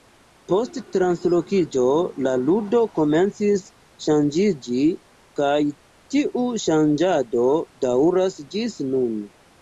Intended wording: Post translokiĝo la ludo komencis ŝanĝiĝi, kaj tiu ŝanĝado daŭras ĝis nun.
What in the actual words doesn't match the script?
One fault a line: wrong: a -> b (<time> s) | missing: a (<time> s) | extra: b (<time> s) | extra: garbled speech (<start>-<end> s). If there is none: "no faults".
no faults